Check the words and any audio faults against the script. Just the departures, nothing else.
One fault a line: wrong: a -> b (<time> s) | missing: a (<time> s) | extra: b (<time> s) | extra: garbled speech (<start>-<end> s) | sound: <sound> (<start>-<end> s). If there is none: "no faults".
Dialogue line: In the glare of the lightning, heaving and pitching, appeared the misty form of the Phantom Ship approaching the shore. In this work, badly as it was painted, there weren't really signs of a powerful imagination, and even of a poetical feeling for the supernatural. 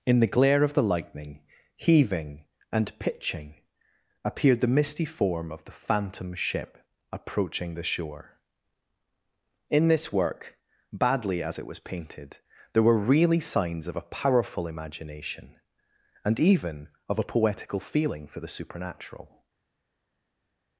wrong: weren't -> were (12.8 s)